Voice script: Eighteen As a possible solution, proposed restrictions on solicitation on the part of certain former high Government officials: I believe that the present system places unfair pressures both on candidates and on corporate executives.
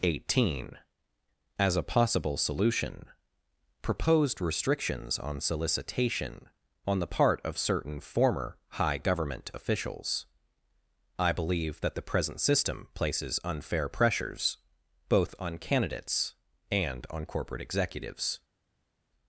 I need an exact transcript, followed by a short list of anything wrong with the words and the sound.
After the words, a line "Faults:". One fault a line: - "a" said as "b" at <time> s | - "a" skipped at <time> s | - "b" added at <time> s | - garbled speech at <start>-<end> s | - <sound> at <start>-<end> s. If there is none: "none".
Eighteen As a possible solution, proposed restrictions on solicitation on the part of certain former high Government officials: I believe that the present system places unfair pressures both on candidates and on corporate executives.
Faults:
none